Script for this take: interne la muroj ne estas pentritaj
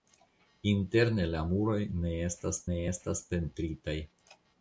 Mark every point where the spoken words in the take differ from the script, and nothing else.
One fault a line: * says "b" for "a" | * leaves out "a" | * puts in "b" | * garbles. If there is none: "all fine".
* puts in "ne estas"